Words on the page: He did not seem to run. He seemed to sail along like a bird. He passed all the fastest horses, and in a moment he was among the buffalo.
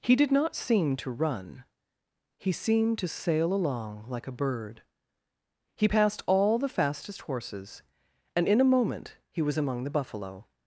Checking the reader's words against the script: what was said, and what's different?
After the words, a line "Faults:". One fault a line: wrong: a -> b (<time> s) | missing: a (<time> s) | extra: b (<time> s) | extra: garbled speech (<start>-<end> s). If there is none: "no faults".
He did not seem to run. He seemed to sail along like a bird. He passed all the fastest horses, and in a moment he was among the buffalo.
Faults:
no faults